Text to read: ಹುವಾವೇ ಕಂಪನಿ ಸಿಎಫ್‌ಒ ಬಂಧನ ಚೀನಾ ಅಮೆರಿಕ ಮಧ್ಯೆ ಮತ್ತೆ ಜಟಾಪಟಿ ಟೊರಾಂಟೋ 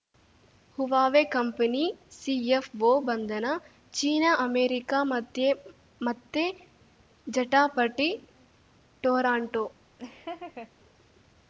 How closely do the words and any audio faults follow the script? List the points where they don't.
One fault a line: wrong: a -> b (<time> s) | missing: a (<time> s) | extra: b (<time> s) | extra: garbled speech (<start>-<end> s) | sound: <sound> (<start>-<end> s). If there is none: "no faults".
sound: laugh (10.0-10.7 s)